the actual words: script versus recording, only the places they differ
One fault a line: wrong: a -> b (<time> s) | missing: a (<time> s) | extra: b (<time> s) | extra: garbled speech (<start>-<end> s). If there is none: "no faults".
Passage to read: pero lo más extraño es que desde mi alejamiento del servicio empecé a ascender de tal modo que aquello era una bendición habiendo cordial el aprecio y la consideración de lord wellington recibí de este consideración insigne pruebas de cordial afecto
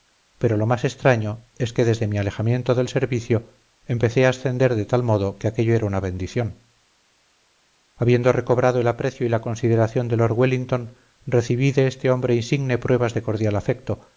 wrong: cordial -> recobrado (8.3 s)
wrong: consideración -> hombre (12.1 s)